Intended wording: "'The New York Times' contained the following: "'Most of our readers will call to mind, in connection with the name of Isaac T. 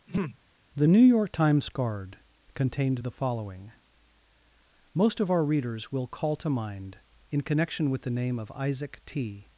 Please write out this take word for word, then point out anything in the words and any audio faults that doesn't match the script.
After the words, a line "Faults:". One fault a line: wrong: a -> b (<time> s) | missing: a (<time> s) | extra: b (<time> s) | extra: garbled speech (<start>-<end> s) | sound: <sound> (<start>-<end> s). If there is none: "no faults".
"'The New York Times' card contained the following: "'Most of our readers will call to mind, in connection with the name of Isaac T.
Faults:
sound: throat clearing (0.1-0.4 s)
extra: card (1.7 s)